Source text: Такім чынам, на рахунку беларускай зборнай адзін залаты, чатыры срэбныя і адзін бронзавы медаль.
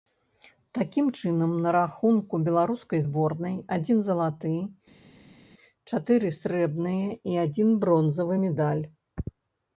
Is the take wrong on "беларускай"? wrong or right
right